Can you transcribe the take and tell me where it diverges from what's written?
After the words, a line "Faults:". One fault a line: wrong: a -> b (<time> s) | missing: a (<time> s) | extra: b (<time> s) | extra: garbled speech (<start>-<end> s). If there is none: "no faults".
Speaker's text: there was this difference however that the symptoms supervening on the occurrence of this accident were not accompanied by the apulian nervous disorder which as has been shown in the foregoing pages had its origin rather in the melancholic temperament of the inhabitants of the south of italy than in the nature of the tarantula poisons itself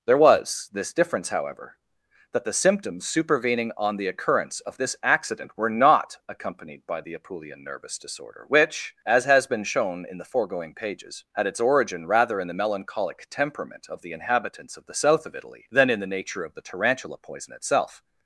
there was this difference however that the symptoms supervening on the occurrence of this accident were not accompanied by the apulian nervous disorder which as has been shown in the foregoing pages had its origin rather in the melancholic temperament of the inhabitants of the south of italy than in the nature of the tarantula poison itself
Faults:
wrong: poisons -> poison (17.2 s)